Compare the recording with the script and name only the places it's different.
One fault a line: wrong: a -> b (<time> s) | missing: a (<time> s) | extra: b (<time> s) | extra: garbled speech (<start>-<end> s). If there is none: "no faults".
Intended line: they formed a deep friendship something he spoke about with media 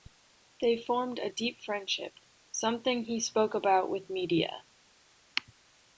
no faults